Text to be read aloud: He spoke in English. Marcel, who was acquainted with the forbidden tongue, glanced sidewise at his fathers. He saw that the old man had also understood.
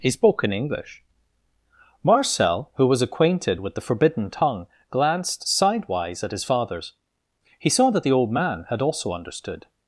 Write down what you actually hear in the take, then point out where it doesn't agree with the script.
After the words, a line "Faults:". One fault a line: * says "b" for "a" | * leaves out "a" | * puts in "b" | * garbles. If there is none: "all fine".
He spoke in English. Marcel, who was acquainted with the forbidden tongue, glanced sidewise at his fathers. He saw that the old man had also understood.
Faults:
all fine